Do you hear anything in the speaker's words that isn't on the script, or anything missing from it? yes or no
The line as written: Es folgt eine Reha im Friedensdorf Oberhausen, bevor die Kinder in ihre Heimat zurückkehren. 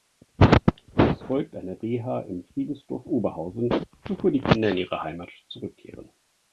no